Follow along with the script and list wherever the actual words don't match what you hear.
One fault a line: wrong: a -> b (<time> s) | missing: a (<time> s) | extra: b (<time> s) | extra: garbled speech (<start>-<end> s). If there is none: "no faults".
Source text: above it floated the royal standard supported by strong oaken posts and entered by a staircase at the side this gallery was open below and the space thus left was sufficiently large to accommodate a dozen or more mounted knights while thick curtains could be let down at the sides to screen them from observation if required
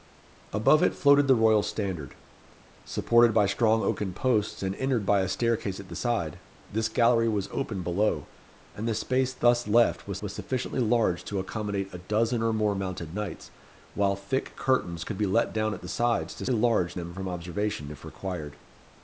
extra: was (10.2 s)
wrong: screen -> large (16.5 s)